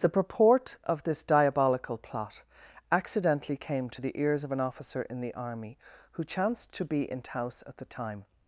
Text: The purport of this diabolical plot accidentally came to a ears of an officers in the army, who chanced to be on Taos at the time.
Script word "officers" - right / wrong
wrong